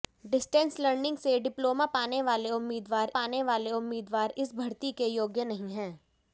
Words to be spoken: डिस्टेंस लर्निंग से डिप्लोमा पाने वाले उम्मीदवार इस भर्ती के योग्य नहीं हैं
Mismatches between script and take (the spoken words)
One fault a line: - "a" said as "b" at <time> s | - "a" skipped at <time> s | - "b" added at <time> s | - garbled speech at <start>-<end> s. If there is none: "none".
- "पाने वाले उम्मीदवार" added at 3.1 s